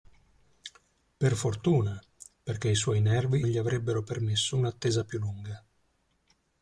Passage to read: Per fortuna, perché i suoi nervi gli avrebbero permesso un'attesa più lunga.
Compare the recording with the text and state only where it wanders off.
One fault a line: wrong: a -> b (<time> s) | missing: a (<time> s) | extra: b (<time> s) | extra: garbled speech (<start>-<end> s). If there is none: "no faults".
no faults